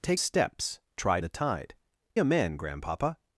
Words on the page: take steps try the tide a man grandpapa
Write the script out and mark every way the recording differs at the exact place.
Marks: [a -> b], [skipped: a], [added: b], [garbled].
take steps try the tide a man grandpapa